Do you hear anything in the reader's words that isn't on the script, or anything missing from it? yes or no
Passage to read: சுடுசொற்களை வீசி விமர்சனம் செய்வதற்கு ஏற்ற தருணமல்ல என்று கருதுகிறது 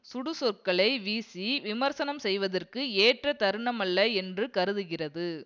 no